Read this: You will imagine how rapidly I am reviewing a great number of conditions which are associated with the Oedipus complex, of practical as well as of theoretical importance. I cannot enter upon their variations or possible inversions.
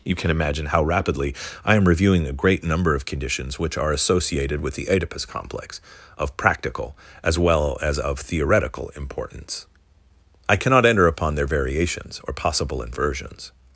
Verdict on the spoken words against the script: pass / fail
fail